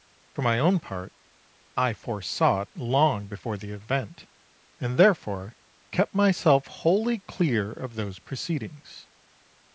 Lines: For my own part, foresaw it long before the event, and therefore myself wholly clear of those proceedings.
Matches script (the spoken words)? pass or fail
fail